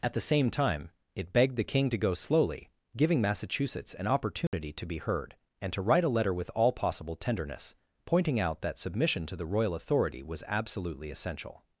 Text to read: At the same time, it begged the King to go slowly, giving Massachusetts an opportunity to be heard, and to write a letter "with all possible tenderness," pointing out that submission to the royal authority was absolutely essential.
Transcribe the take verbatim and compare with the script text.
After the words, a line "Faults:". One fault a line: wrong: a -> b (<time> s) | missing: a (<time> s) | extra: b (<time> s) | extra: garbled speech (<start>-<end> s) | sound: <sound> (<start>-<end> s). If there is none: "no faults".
At the same time, it begged the King to go slowly, giving Massachusetts an opportunity to be heard, and to write a letter "with all possible tenderness," pointing out that submission to the royal authority was absolutely essential.
Faults:
sound: dropout (4.5-4.5 s)